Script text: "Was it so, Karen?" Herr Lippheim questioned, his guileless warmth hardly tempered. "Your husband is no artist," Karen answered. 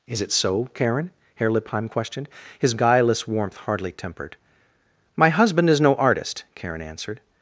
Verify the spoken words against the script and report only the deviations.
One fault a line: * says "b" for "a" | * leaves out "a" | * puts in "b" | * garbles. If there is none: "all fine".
* says "Is" for "Was"
* says "My" for "Your"